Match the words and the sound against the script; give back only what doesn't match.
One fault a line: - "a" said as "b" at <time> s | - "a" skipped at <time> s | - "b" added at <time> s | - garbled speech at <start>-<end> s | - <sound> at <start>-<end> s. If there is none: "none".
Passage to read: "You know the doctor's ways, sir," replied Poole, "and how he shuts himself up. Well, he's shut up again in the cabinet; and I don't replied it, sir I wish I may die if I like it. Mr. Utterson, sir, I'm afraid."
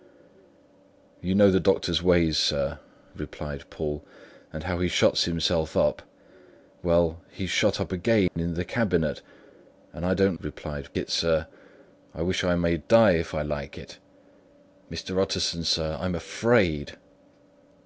- dropout at 8.3-8.4 s